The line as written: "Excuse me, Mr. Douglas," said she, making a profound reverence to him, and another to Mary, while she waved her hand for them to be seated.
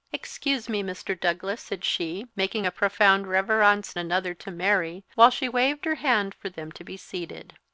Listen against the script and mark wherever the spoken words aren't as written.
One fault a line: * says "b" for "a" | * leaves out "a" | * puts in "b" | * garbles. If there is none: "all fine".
* leaves out "to him and"